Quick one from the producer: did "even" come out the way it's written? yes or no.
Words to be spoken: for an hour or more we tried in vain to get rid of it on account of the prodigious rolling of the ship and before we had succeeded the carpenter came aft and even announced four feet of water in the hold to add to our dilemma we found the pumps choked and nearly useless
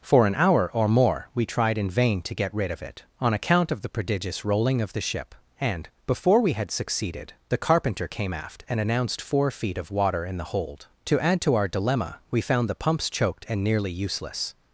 no